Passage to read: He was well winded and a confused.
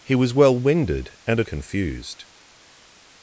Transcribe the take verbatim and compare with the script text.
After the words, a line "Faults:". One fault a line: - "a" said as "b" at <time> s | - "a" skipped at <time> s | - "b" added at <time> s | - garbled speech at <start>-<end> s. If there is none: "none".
He was well winded and a confused.
Faults:
none